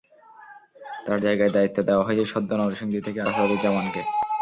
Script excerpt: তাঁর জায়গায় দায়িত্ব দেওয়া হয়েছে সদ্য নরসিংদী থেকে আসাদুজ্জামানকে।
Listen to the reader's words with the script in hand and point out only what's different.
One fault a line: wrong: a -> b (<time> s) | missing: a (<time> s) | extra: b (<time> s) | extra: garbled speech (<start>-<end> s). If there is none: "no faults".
no faults